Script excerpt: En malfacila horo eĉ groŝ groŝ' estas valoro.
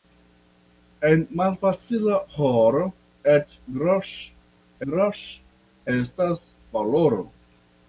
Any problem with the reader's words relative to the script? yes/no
no